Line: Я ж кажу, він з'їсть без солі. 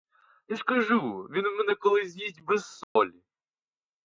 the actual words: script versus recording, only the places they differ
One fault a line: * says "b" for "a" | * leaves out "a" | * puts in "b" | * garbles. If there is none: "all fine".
* puts in "мене колись"